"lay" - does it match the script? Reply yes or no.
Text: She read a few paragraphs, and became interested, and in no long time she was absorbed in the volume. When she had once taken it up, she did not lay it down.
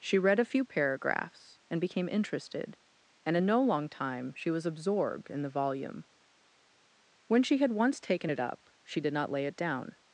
yes